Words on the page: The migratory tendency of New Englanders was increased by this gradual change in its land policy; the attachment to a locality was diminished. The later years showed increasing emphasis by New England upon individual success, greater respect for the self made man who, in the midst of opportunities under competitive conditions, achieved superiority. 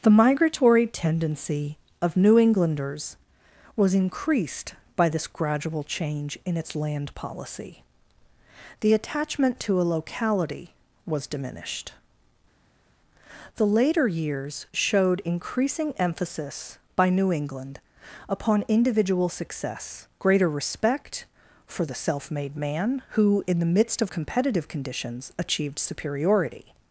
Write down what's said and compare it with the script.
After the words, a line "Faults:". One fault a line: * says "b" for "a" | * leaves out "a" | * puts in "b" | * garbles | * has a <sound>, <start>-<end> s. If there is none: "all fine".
The migratory tendency of New Englanders was increased by this gradual change in its land policy; the attachment to a locality was diminished. The later years showed increasing emphasis by New England upon individual success, greater respect for the self made man who, in the midst of competitive conditions, achieved superiority.
Faults:
* leaves out "opportunities under"